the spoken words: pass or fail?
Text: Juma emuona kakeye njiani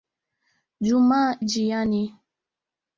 fail